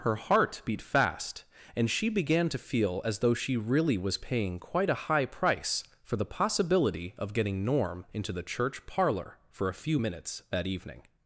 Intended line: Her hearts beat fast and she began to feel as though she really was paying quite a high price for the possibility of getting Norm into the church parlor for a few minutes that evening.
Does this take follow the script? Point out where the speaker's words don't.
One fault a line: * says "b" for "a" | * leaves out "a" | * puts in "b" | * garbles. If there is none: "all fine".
* says "heart" for "hearts"